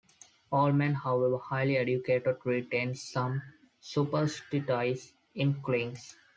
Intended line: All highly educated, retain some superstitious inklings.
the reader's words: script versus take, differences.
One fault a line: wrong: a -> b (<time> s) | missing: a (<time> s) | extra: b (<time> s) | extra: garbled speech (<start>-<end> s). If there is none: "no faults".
extra: men however (0.7 s)